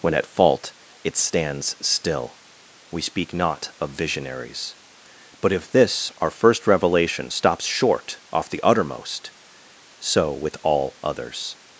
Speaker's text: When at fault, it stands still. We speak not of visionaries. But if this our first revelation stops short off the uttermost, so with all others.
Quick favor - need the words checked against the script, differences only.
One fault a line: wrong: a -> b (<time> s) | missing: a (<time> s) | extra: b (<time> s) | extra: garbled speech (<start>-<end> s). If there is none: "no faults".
no faults